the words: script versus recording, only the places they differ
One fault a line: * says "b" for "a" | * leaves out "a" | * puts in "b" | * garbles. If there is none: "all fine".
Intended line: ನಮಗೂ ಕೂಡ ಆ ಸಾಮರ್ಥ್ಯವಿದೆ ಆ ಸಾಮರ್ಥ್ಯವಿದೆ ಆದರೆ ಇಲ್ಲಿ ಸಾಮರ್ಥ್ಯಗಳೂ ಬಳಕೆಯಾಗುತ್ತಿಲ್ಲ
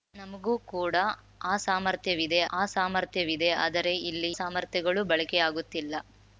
all fine